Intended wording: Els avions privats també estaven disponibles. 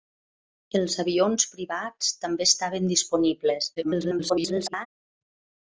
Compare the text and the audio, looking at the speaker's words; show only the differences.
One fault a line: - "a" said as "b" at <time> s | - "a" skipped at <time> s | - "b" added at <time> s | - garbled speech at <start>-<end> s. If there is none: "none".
- garbled speech at 3.8-4.9 s